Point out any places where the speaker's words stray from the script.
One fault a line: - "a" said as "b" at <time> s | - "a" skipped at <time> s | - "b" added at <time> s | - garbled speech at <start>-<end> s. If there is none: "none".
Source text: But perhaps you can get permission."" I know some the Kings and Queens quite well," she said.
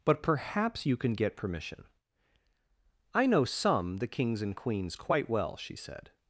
none